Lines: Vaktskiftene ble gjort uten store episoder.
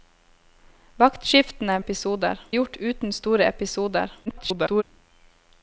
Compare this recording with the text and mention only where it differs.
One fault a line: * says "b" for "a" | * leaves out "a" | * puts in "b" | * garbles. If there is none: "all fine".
* says "episoder" for "ble"
* garbles